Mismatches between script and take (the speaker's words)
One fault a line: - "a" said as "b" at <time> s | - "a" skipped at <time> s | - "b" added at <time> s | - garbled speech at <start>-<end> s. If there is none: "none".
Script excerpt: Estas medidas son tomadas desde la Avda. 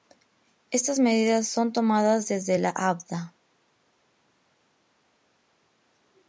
none